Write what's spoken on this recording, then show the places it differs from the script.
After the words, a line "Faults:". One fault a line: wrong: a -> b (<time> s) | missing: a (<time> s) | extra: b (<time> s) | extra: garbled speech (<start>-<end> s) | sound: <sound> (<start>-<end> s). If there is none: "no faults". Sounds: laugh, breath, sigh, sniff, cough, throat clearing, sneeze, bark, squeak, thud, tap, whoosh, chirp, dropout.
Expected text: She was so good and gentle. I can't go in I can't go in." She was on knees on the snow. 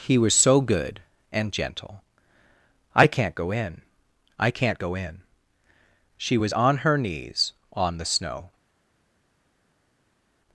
He was so good and gentle. I can't go in I can't go in." She was on her knees on the snow.
Faults:
wrong: She -> He (0.0 s)
extra: her (6.8 s)